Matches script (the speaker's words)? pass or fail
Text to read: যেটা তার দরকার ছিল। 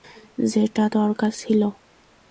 fail